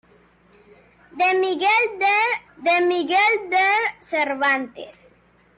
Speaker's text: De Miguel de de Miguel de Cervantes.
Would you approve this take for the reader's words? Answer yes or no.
yes